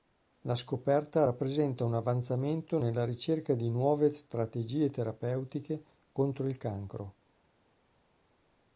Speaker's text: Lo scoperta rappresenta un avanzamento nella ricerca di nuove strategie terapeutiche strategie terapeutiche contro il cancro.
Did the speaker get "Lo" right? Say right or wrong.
wrong